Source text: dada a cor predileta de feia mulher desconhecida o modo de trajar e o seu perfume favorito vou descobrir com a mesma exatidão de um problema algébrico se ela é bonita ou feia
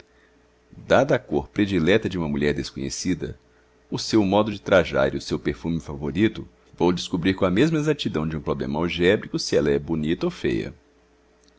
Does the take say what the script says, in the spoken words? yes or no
no